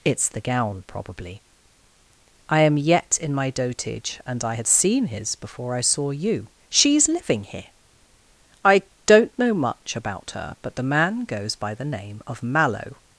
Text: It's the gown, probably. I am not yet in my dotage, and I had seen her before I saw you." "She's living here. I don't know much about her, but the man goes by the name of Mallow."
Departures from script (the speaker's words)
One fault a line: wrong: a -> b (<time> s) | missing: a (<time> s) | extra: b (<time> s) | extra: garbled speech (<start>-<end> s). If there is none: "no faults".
missing: not (2.8 s)
wrong: her -> his (5.1 s)